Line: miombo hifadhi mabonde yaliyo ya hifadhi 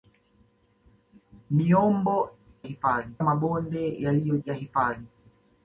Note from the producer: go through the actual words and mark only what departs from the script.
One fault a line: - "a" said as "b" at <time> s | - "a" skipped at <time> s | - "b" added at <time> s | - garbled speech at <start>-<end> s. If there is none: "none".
none